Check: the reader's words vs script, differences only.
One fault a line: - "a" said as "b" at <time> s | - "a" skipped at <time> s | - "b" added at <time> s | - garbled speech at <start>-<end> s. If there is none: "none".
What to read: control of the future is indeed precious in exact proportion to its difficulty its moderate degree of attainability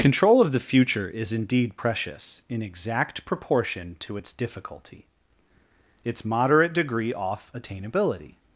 - "of" said as "off" at 7.1 s